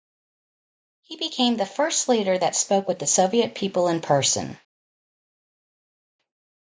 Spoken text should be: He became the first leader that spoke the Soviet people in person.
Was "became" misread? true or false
false